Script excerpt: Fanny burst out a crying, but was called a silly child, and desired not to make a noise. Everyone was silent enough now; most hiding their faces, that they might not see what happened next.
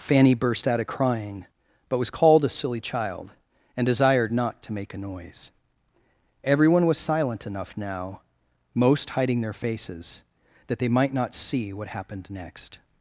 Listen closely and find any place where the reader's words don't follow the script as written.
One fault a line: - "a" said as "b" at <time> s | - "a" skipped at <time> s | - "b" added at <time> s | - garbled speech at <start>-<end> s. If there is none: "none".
none